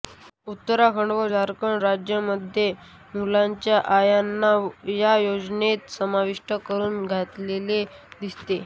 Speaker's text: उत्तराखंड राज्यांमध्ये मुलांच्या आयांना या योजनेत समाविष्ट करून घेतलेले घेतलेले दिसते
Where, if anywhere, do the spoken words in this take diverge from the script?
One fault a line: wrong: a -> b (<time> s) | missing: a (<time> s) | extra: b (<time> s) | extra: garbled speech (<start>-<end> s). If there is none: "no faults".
extra: व झारखंड (1.1 s)
missing: घेतलेले (7.8 s)